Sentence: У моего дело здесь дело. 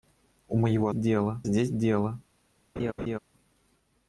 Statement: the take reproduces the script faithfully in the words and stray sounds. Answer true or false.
false